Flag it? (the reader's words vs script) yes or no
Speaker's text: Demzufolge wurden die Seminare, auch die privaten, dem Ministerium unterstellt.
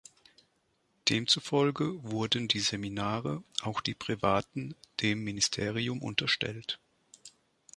no